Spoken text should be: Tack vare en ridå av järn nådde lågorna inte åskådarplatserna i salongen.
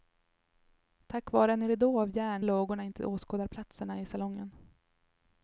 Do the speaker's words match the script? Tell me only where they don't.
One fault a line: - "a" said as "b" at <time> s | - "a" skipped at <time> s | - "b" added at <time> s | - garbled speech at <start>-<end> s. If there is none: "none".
- "nådde" skipped at 2.5 s